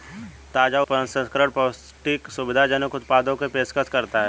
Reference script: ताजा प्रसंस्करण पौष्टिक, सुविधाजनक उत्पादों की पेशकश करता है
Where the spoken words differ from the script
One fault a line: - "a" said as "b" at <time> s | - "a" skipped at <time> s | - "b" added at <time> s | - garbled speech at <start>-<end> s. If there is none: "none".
none